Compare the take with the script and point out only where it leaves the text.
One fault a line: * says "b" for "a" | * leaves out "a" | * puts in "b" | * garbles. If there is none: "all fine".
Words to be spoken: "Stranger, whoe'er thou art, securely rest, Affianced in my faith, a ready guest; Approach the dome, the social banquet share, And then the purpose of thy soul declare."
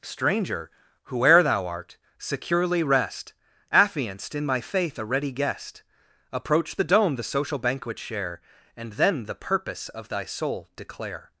all fine